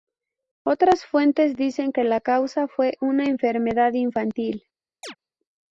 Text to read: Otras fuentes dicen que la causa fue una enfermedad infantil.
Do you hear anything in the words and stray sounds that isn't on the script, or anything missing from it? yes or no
yes